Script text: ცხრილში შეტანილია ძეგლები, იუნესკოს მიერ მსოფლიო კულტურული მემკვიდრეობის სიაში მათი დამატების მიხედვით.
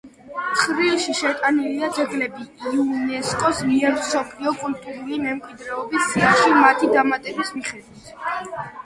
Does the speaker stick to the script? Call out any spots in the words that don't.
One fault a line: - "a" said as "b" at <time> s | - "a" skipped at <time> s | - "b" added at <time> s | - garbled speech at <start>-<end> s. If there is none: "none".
none